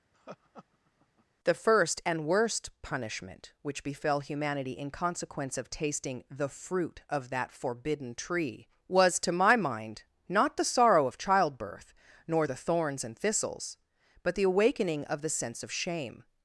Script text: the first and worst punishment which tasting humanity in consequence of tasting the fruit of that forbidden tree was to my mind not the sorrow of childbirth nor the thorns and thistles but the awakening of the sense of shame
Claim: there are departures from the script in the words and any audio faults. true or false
true